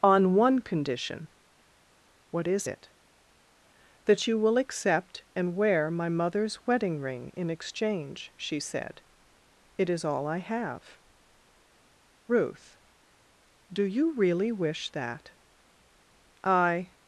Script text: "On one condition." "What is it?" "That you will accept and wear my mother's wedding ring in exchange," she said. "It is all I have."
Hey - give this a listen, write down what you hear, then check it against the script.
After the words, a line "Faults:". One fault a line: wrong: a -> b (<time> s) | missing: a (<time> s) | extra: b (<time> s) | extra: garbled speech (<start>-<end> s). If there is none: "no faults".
"On one condition." "What is it?" "That you will accept and wear my mother's wedding ring in exchange," she said. "It is all I have." "Ruth, do you really wish that?" "I
Faults:
extra: Ruth do you really wish that I (12.3 s)